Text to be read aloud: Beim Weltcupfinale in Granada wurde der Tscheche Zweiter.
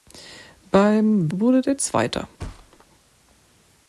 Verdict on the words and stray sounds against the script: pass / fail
fail